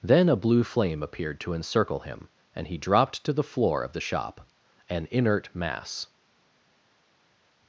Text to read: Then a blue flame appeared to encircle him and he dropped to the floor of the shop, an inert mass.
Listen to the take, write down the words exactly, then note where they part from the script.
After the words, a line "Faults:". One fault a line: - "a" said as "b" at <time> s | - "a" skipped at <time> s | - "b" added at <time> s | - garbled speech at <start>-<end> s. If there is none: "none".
Then a blue flame appeared to encircle him and he dropped to the floor of the shop, an inert mass.
Faults:
none